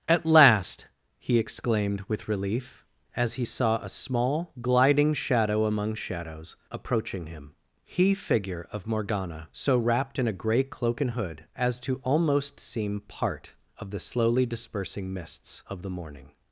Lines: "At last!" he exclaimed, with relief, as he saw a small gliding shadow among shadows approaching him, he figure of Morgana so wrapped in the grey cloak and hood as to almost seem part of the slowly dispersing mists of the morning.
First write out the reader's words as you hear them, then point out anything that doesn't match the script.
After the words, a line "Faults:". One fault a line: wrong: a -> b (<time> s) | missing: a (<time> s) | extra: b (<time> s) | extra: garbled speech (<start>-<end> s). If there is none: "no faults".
"At last!" he exclaimed, with relief, as he saw a small gliding shadow among shadows approaching him, he figure of Morgana so wrapped in a grey cloak and hood as to almost seem part of the slowly dispersing mists of the morning.
Faults:
wrong: the -> a (10.3 s)